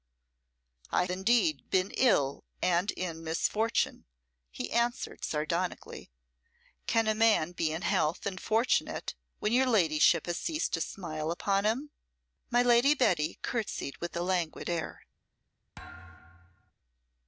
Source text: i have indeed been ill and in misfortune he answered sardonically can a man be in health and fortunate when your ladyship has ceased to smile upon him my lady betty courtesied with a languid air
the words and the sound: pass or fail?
fail